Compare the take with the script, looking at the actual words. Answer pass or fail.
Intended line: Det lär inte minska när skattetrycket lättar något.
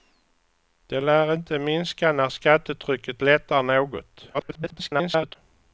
fail